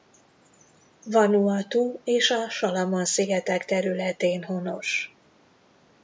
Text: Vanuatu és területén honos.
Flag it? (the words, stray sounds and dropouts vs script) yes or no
yes